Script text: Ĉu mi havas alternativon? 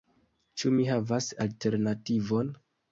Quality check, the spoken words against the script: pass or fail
pass